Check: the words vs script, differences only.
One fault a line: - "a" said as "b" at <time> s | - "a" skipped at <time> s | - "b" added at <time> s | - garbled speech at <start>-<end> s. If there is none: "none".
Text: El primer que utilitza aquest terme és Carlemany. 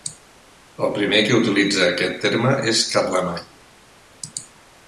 none